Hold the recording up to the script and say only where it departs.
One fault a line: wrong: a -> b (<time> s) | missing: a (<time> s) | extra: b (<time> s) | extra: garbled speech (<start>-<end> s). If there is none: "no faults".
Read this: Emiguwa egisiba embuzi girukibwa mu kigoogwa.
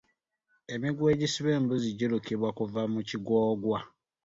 extra: kuva (2.6 s)